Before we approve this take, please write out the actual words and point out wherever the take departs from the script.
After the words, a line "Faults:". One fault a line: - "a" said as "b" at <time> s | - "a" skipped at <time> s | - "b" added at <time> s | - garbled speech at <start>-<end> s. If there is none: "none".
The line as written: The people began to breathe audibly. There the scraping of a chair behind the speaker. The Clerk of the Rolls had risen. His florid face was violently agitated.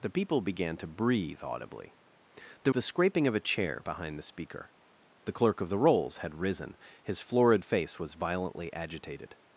The people began to breathe audibly. There the scraping of a chair behind the speaker. The Clerk of the Rolls had risen. His florid face was violently agitated.
Faults:
none